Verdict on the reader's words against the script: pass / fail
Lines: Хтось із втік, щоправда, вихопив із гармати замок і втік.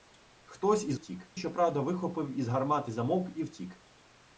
pass